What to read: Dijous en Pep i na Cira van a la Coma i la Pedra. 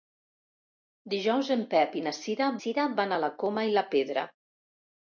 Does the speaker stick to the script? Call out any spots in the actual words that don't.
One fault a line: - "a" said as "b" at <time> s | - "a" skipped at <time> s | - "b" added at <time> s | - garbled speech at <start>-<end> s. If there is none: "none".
- "Cira" added at 2.6 s